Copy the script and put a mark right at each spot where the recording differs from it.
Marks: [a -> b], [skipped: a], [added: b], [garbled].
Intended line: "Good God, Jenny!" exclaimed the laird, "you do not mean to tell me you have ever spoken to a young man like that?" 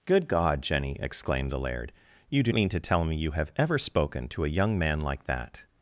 "Good God, Jenny!" exclaimed the laird, "you do [skipped: not] mean to tell me you have ever spoken to a young man like that?"